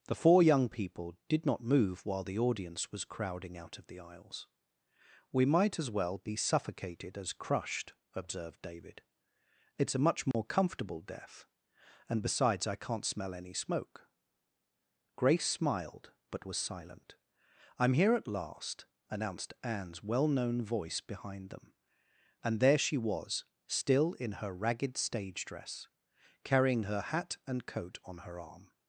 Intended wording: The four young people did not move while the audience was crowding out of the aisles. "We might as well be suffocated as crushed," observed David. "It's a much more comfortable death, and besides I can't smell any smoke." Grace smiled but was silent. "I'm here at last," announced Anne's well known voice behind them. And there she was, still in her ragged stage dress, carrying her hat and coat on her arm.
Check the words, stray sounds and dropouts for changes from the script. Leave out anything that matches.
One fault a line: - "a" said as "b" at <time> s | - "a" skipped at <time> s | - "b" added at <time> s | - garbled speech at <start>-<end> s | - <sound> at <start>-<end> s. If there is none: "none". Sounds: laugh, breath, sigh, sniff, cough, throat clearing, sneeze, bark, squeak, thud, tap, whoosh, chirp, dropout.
- dropout at 10.3-10.3 s